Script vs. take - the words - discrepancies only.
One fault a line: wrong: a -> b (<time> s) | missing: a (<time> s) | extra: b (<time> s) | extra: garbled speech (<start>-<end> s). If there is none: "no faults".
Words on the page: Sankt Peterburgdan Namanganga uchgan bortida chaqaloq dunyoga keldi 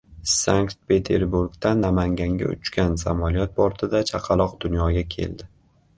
extra: samolyot (3.0 s)